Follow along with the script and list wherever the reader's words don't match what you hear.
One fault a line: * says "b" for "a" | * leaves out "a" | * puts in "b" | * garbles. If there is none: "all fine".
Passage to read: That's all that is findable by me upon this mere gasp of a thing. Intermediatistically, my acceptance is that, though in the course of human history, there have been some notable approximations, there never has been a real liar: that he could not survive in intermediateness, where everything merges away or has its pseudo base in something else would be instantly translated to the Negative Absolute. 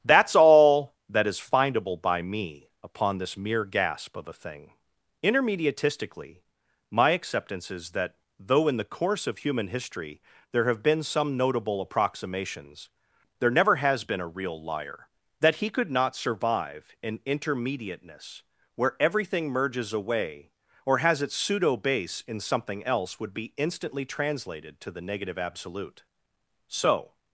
* puts in "So"